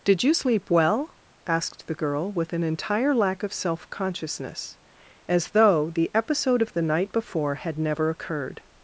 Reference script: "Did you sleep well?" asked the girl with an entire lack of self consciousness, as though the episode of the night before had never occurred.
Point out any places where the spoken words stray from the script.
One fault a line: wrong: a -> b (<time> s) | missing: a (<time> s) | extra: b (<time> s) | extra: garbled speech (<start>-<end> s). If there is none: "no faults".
no faults